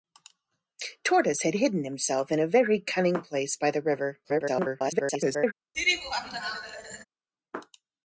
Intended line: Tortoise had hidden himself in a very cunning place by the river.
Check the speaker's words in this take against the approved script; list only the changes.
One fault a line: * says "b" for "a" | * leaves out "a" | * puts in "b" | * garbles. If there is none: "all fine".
* garbles